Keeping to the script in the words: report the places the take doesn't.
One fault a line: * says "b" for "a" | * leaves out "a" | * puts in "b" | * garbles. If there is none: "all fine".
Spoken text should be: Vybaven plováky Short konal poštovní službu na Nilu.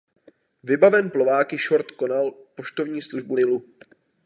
* leaves out "na"